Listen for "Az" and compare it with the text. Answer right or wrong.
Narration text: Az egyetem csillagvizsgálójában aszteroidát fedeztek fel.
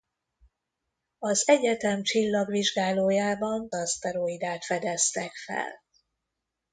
right